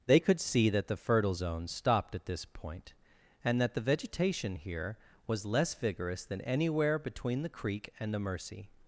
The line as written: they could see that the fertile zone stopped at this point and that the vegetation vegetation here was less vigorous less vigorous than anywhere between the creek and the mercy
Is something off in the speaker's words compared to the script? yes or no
yes